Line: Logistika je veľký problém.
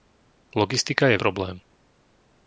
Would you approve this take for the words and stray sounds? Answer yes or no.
no